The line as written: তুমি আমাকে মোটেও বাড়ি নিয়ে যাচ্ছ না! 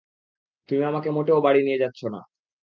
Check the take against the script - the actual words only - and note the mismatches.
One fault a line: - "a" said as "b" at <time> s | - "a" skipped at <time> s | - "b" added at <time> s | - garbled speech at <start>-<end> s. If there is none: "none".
none